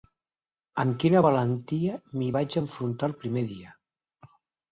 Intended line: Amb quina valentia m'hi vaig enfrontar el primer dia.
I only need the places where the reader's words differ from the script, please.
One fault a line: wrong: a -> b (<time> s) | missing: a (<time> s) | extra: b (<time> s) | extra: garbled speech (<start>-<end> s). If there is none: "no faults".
no faults